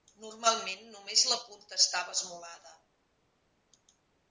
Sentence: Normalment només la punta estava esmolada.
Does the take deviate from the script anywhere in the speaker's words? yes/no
no